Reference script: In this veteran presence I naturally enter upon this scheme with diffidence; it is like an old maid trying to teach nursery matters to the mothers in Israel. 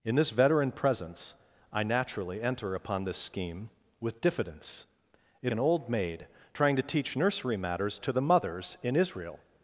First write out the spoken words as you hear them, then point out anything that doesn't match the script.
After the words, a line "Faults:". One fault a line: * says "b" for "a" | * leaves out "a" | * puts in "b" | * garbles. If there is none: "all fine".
In this veteran presence I naturally enter upon this scheme with diffidence; it an old maid trying to teach nursery matters to the mothers in Israel.
Faults:
* leaves out "is like"